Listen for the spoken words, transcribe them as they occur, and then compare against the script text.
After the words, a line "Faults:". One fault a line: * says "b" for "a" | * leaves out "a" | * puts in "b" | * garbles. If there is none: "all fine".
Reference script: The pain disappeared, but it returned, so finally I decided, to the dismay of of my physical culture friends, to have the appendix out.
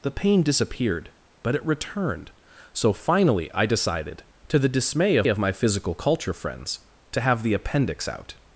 The pain disappeared, but it returned, so finally I decided, to the dismay of of my physical culture friends, to have the appendix out.
Faults:
all fine